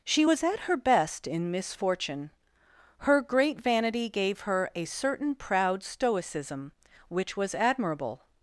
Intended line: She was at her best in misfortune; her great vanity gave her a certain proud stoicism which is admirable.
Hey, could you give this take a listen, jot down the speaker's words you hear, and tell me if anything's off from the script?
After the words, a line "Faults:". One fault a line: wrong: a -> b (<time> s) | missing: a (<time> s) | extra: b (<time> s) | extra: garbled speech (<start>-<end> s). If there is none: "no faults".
She was at her best in misfortune; her great vanity gave her a certain proud stoicism which was admirable.
Faults:
wrong: is -> was (7.4 s)